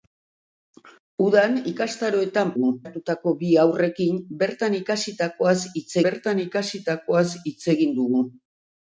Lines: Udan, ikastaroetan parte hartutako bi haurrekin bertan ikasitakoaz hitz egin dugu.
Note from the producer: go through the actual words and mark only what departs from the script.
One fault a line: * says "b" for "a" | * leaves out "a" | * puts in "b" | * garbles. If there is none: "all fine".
* says "dugu" for "parte"
* puts in "bertan ikasitakoaz hitz"